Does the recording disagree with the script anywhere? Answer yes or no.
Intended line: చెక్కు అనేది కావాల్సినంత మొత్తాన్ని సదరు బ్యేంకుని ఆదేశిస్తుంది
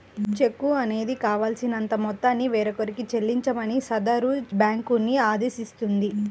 yes